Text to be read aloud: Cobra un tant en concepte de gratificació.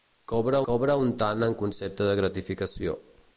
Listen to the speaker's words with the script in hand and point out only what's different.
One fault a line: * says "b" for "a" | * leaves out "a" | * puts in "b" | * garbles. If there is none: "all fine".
* puts in "cobra"